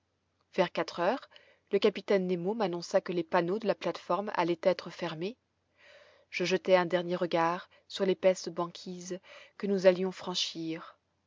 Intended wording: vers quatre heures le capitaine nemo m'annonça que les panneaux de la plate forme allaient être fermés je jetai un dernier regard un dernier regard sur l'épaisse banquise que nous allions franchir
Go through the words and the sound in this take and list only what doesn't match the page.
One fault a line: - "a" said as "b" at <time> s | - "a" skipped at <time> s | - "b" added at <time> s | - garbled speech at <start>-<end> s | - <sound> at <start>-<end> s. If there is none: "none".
- "un dernier regard" skipped at 7.7 s